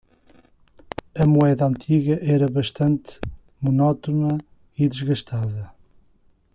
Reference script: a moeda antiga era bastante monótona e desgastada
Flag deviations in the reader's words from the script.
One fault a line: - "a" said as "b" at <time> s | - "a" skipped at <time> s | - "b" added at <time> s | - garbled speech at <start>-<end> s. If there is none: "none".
none